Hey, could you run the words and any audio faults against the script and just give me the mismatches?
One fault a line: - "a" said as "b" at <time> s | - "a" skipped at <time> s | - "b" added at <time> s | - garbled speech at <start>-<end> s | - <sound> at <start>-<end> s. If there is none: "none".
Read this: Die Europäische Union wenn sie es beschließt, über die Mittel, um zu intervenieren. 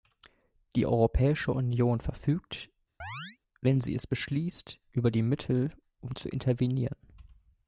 - "verfügt" added at 2.0 s
- chirp at 3.0-3.4 s